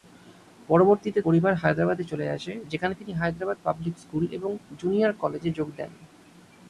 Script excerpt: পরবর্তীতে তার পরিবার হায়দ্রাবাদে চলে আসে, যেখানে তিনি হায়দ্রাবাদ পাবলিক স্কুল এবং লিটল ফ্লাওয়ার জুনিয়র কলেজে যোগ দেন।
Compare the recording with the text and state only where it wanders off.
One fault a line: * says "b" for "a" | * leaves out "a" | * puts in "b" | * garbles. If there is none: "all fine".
* leaves out "তার"
* leaves out "লিটল ফ্লাওয়ার"